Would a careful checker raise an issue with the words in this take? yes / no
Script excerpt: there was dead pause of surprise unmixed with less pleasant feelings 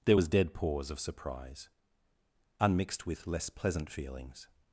no